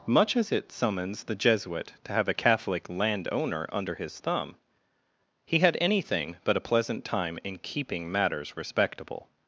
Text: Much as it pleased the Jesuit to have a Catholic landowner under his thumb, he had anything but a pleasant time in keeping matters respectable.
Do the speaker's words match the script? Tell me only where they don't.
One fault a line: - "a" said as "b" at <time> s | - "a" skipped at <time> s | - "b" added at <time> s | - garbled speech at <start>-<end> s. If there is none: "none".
- "pleased" said as "summons" at 0.7 s